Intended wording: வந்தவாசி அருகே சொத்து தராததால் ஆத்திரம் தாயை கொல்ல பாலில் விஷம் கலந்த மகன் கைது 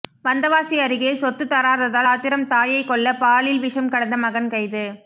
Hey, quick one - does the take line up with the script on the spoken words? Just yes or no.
yes